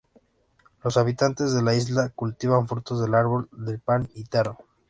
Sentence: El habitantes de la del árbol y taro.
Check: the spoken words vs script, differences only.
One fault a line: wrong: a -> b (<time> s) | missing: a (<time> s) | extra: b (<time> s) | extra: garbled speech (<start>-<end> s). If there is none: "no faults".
wrong: El -> Los (0.8 s)
extra: isla cultivan frutos (1.8 s)
extra: del pan (3.5 s)